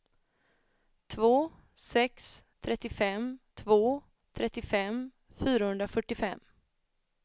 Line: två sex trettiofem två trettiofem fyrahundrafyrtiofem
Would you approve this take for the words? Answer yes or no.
yes